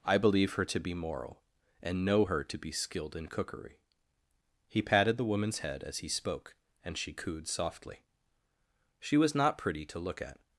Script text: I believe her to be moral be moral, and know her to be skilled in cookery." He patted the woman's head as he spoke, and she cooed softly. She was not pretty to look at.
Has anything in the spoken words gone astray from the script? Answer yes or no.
yes